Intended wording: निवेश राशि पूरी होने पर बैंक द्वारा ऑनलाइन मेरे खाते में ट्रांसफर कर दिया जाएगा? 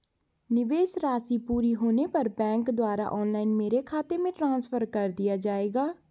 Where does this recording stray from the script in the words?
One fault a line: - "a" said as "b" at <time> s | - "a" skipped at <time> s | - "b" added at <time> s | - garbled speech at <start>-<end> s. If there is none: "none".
none